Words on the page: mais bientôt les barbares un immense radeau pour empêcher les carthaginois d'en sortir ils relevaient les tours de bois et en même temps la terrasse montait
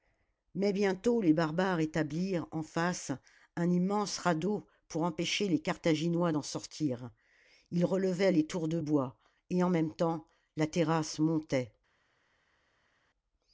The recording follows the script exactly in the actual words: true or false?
false